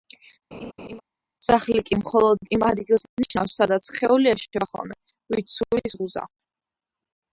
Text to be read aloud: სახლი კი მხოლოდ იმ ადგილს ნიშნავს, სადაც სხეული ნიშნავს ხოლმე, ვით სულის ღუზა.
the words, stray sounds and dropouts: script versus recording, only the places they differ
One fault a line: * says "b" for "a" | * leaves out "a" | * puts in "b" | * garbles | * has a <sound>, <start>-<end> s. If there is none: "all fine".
* has a laugh, 0.5-1.0 s
* says "ეშვება" for "ნიშნავს"